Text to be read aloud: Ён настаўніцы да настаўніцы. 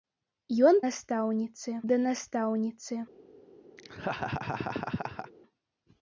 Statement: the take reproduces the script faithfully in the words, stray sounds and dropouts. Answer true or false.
false